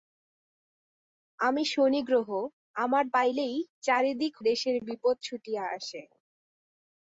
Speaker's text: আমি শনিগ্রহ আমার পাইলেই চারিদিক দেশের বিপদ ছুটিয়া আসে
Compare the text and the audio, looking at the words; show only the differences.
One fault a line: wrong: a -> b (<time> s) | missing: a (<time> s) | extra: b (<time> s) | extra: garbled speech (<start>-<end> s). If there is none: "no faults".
no faults